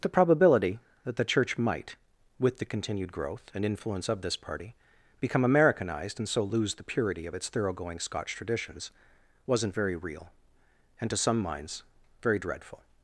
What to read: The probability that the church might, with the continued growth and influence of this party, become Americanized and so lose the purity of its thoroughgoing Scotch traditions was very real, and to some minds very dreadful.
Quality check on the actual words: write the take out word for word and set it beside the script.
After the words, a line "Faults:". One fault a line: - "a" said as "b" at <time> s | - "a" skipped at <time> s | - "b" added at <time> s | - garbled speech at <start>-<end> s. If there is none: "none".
The probability that the church might, with the continued growth and influence of this party, become Americanized and so lose the purity of its thoroughgoing Scotch traditions wasn't very real, and to some minds very dreadful.
Faults:
- "was" said as "wasn't" at 9.5 s